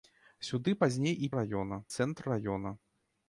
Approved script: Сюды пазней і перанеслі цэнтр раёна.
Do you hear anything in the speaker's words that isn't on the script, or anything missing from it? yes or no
yes